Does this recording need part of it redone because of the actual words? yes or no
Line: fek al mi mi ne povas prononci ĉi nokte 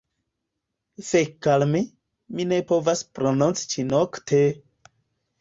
no